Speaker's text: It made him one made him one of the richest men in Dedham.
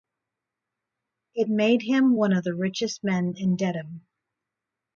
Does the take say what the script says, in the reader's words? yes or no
no